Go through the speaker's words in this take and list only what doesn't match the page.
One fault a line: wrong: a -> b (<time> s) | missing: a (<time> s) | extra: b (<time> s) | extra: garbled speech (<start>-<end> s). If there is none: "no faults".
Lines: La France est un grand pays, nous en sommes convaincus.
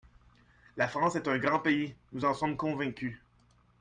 no faults